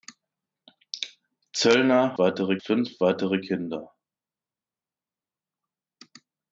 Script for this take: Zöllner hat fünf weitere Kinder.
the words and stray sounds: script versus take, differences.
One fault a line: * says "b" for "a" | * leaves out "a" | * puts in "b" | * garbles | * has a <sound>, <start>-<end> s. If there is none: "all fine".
* says "weitere" for "hat"